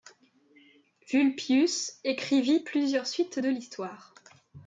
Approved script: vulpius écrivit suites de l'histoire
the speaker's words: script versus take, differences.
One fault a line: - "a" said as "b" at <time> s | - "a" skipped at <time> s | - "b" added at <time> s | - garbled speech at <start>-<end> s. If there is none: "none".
- "plusieurs" added at 2.6 s